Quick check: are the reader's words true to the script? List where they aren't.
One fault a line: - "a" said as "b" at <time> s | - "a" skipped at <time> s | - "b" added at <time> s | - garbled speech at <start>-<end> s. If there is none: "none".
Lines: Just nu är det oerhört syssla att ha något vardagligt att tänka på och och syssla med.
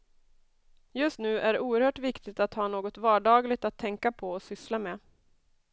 - "syssla" said as "viktigt" at 2.0 s
- "och" skipped at 4.4 s